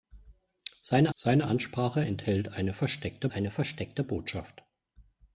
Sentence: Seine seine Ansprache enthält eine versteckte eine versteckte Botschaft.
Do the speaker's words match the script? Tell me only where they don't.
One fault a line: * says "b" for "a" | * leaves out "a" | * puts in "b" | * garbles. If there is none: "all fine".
all fine